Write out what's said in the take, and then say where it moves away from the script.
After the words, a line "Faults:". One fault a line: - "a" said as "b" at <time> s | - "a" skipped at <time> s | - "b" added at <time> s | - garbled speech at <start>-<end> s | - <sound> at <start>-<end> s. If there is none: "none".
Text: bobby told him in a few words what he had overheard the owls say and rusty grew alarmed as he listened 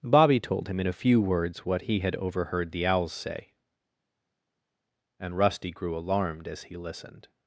bobby told him in a few words what he had overheard the owls say and rusty grew alarmed as he listened
Faults:
none